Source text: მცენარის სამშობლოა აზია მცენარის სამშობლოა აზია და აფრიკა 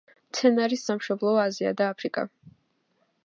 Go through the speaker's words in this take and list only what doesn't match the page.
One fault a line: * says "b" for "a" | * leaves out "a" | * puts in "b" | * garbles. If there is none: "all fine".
* leaves out "მცენარის სამშობლოა აზია"